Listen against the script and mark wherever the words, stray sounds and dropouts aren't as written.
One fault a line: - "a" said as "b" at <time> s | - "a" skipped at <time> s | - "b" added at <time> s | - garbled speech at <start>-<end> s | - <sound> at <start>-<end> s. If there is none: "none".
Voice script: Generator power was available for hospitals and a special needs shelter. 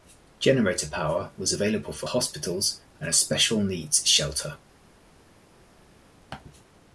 none